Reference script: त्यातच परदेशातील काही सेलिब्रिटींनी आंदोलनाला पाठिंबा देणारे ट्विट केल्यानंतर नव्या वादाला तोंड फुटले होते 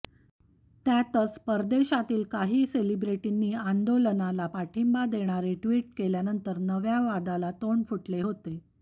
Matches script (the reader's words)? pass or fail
pass